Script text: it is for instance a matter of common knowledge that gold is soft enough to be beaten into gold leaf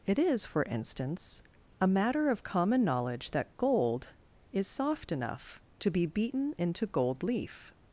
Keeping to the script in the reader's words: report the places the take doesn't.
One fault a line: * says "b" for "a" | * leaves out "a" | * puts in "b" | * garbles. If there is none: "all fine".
all fine